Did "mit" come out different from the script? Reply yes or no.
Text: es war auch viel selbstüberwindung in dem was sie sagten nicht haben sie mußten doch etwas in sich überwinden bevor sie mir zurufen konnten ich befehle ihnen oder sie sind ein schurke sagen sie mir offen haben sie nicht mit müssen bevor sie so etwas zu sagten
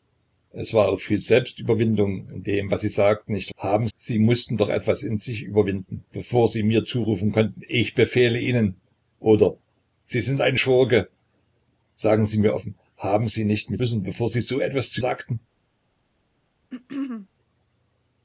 no